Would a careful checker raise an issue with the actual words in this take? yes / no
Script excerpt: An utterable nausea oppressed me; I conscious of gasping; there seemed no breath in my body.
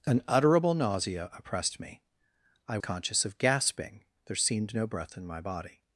no